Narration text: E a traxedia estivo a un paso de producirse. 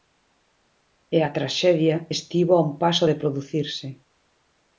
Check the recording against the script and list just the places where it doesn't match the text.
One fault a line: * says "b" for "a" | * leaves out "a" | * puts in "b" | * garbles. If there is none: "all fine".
all fine